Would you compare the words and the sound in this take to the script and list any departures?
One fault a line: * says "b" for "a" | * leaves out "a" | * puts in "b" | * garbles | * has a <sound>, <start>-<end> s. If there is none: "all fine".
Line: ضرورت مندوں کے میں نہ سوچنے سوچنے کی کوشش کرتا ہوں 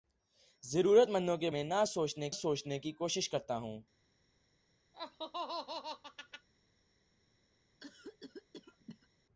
* has a laugh, 4.9-6.5 s
* has a cough, 7.8-9.1 s